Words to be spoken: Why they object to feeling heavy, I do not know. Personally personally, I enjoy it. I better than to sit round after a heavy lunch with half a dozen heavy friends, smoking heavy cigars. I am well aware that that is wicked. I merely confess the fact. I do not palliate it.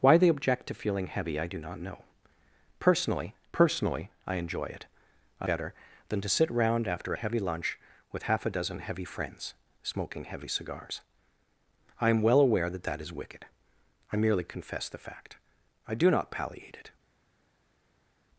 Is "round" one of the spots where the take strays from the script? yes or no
no